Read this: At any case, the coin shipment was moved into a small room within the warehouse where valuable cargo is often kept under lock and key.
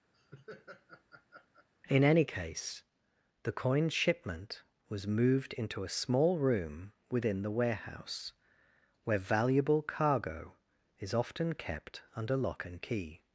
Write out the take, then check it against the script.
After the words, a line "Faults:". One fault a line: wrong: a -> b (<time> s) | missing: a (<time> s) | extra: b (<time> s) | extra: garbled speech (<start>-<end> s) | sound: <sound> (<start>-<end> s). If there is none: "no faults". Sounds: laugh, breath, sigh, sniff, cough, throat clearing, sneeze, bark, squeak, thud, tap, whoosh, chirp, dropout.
In any case, the coin shipment was moved into a small room within the warehouse where valuable cargo is often kept under lock and key.
Faults:
sound: laugh (0.1-1.7 s)
wrong: At -> In (1.9 s)